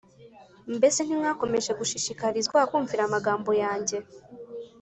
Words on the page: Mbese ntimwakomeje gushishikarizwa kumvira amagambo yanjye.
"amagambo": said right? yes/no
yes